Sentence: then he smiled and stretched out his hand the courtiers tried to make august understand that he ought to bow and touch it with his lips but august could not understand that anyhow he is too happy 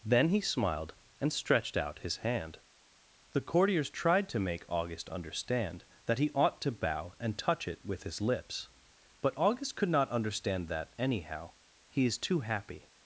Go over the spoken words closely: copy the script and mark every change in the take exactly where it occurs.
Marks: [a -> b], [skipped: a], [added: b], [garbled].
then he smiled and stretched out his hand the courtiers tried to make august understand that he ought to bow and touch it with his lips but august could not understand that anyhow he is too happy